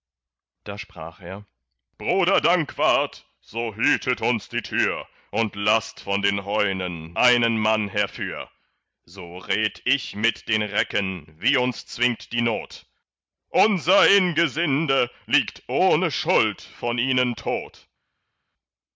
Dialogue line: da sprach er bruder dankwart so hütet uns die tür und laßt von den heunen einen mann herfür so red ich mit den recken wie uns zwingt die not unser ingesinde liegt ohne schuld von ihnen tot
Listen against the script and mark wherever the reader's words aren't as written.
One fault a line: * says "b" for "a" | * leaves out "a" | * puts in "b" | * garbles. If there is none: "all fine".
all fine